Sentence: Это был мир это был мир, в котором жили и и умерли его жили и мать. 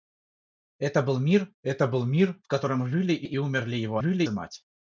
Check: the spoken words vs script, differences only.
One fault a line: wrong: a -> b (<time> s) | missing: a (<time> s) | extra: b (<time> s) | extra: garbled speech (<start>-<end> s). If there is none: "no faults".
no faults